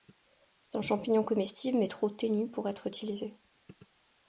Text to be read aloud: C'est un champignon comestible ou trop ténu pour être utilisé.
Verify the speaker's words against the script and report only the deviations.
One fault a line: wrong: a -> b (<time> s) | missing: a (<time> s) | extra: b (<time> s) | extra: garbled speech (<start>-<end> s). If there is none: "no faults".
wrong: ou -> mais (1.8 s)